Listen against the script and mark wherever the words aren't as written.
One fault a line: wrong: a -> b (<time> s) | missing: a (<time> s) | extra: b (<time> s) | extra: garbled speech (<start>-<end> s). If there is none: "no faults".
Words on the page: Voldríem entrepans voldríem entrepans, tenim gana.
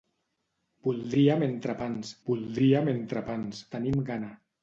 no faults